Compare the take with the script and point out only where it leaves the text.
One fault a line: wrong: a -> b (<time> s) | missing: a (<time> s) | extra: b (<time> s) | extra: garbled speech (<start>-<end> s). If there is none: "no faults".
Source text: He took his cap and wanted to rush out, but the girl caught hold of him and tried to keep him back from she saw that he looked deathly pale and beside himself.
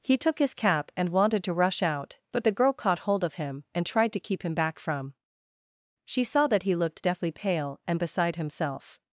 no faults